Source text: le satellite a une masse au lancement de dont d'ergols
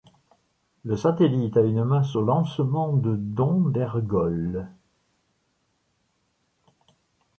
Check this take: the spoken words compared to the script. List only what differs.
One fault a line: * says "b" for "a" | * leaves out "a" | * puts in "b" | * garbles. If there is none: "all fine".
all fine